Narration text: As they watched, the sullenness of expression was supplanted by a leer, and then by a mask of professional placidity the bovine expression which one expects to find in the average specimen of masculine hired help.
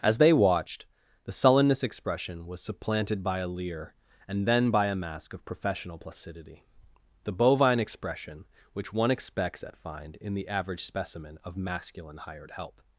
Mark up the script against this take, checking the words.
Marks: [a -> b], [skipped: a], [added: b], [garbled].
As they watched, the sullenness [skipped: of] expression was supplanted by a leer, and then by a mask of professional placidity the bovine expression which one expects [to -> at] find in the average specimen of masculine hired help.